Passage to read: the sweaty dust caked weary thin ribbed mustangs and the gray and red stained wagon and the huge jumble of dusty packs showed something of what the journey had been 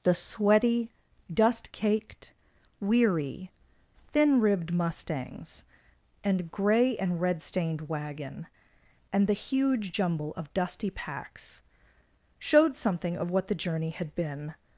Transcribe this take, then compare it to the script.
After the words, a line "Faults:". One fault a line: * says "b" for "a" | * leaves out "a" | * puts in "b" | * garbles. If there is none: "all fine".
the sweaty dust caked weary thin ribbed mustangs and gray and red stained wagon and the huge jumble of dusty packs showed something of what the journey had been
Faults:
* leaves out "the"